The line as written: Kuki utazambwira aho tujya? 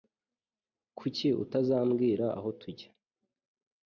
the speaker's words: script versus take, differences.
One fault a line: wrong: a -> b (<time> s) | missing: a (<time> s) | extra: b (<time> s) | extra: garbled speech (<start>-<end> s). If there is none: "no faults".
no faults